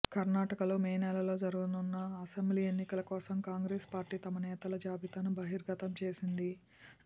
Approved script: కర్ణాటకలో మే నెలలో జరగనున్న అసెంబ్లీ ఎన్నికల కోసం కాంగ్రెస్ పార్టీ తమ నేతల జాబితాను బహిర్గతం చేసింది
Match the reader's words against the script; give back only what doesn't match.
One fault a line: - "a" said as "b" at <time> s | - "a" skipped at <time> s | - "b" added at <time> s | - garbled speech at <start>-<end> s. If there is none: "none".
none